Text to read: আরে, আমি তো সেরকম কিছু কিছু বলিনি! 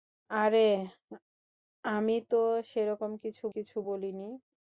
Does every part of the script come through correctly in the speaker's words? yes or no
yes